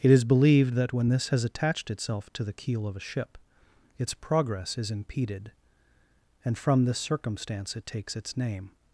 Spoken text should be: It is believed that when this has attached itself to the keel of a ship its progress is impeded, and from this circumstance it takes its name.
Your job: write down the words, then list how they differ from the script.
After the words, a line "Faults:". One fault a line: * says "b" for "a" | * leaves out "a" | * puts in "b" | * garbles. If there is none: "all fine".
It is believed that when this has attached itself to the keel of a ship its progress is impeded, and from this circumstance it takes its name.
Faults:
all fine